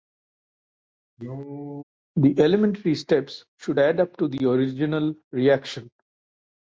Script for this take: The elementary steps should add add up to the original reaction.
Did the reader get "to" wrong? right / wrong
right